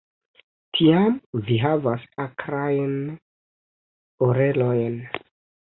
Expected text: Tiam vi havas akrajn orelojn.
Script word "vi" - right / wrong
right